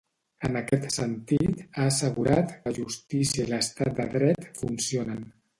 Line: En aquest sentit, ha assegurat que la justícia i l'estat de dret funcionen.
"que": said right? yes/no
no